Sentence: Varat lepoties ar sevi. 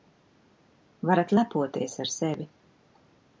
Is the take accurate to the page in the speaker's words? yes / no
yes